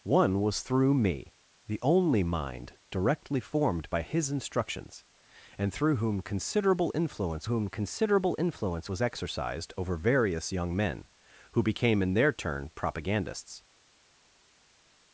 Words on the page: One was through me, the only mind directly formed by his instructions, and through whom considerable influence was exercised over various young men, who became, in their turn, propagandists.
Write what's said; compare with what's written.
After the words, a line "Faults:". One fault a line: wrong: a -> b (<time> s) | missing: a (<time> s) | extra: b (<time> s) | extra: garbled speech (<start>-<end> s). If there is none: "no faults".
One was through me, the only mind directly formed by his instructions, and through whom considerable influence whom considerable influence was exercised over various young men, who became, in their turn, propagandists.
Faults:
extra: whom considerable influence (7.5 s)